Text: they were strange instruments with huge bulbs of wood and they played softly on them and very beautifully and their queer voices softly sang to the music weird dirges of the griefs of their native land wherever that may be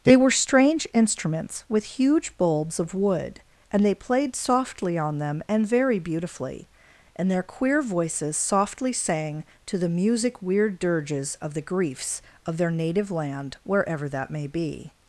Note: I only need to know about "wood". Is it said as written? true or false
true